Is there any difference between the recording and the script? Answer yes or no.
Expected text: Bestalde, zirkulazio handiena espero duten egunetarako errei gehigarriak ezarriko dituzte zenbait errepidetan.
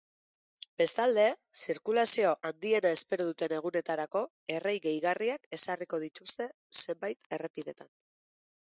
no